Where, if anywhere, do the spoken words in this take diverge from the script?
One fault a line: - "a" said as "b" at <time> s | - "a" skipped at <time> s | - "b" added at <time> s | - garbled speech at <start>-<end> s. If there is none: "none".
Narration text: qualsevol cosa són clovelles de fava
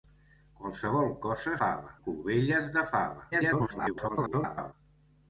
- "són" said as "fava" at 1.6 s
- garbled speech at 3.3-4.7 s